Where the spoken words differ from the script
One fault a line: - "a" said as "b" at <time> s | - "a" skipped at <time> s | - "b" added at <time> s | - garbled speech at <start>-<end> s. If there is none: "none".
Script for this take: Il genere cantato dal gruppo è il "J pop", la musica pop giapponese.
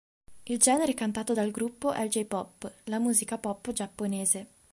none